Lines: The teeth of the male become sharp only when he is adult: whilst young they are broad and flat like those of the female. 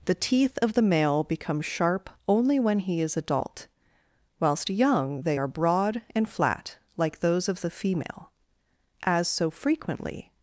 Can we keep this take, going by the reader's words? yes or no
no